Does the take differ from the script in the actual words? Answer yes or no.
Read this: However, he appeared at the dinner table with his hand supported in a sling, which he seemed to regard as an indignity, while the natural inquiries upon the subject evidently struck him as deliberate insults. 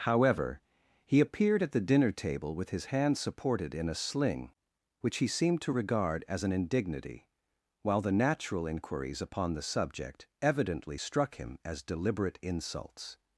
no